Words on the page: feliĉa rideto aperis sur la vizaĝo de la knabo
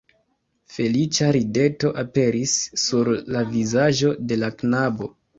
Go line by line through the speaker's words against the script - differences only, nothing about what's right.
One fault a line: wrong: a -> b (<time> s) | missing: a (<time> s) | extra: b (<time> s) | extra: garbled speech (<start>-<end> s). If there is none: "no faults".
no faults